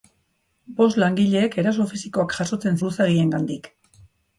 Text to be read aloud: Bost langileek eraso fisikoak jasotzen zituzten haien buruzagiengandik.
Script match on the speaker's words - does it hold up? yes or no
no